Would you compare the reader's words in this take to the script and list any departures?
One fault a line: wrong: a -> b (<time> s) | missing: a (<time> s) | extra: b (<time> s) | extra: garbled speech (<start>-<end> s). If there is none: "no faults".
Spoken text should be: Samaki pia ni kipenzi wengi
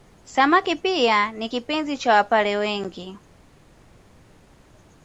extra: cha Wapare (2.0 s)